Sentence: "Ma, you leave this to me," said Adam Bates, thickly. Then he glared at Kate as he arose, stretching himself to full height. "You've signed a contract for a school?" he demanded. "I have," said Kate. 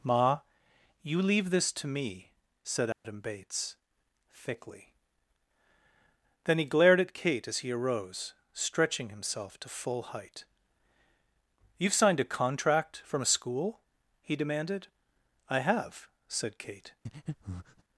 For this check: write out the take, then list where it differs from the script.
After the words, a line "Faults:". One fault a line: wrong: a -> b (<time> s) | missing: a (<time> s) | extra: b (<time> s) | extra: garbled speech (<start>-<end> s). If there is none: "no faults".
"Ma, you leave this to me," said Adam Bates, thickly. Then he glared at Kate as he arose, stretching himself to full height. "You've signed a contract from a school?" he demanded. "I have," said Kate.
Faults:
wrong: for -> from (13.0 s)